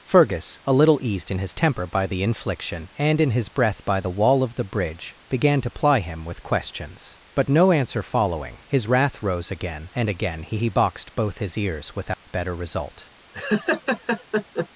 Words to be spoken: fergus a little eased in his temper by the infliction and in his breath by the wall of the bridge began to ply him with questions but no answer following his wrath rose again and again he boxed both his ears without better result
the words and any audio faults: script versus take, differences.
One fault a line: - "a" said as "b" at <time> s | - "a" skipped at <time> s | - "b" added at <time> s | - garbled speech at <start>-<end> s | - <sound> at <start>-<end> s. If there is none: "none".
- "he" added at 10.5 s
- dropout at 12.1-12.3 s
- laugh at 13.3-14.7 s